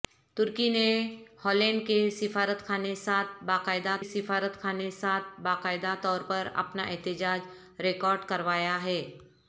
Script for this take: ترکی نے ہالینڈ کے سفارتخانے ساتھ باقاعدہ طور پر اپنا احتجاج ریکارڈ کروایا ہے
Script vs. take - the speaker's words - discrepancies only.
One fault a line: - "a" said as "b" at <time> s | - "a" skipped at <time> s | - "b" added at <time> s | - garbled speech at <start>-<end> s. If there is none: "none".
- "سفارتخانے ساتھ باقاعدہ" added at 4.0 s